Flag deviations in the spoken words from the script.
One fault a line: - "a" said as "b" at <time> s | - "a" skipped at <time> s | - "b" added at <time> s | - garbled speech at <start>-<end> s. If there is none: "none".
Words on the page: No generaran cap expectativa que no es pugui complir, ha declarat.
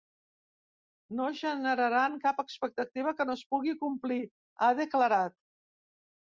none